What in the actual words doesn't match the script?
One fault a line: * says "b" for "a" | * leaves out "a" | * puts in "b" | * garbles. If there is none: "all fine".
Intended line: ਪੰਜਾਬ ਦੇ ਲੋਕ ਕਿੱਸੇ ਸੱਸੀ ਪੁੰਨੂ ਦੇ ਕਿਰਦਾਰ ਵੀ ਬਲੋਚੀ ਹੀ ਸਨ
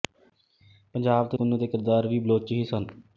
* leaves out "ਲੋਕ ਕਿੱਸੇ ਸੱਸੀ"